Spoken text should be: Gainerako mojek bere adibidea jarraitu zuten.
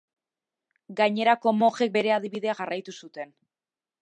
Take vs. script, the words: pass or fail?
pass